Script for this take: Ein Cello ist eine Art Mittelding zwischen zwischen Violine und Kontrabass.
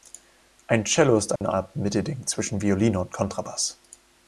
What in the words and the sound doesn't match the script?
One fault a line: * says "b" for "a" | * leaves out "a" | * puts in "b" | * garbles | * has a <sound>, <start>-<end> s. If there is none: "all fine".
* has a dropout, 1.4-1.4 s
* leaves out "zwischen"